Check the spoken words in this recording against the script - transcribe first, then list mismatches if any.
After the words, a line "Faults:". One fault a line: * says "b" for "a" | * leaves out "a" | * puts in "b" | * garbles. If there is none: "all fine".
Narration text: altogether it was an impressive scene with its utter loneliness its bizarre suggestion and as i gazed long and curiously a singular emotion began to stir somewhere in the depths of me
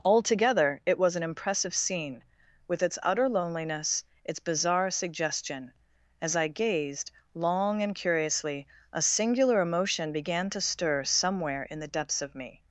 altogether it was an impressive scene with its utter loneliness its bizarre suggestion as i gazed long and curiously a singular emotion began to stir somewhere in the depths of me
Faults:
* leaves out "and"